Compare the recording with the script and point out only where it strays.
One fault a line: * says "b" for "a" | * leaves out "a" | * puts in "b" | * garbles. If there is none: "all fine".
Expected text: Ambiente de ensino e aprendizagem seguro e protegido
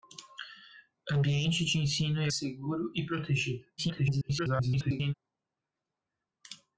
* leaves out "aprendizagem"
* garbles